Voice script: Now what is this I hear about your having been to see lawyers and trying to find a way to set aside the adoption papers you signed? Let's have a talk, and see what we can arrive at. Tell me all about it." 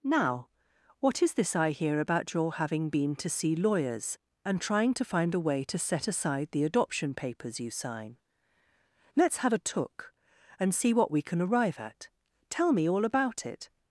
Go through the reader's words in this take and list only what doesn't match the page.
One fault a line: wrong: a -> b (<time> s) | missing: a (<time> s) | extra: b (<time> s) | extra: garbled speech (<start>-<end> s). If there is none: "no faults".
wrong: signed -> sign (7.7 s)
wrong: talk -> took (9.6 s)